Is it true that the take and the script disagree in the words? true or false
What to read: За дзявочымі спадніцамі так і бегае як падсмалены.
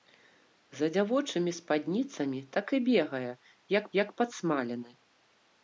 true